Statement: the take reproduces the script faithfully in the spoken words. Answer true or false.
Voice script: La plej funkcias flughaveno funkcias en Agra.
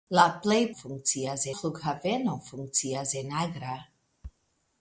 true